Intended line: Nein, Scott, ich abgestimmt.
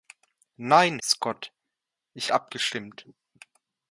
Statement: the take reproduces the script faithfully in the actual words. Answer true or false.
true